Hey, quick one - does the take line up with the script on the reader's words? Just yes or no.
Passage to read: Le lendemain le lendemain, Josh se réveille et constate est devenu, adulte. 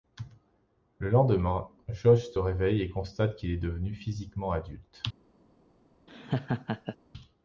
no